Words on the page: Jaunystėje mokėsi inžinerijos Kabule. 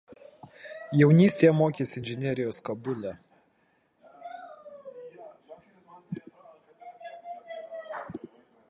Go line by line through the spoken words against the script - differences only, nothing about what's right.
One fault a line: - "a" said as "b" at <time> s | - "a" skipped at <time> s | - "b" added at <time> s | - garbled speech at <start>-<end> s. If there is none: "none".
none